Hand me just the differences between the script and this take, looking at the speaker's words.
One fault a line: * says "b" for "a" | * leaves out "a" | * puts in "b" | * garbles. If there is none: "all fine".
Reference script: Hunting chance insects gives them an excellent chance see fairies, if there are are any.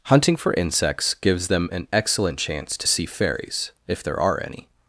* says "for" for "chance"
* puts in "to"
* leaves out "are"